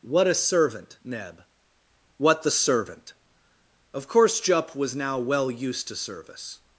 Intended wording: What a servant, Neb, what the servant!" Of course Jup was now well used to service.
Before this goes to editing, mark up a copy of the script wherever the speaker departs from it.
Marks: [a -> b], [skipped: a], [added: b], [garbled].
What a servant, Neb, what the servant!" Of course Jup was now well used to service.